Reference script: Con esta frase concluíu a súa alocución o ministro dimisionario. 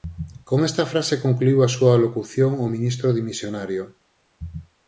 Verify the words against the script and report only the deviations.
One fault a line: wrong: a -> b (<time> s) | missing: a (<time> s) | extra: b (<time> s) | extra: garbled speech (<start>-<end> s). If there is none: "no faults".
no faults